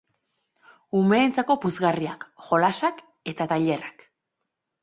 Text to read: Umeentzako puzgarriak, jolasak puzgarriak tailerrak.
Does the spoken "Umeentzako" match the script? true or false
true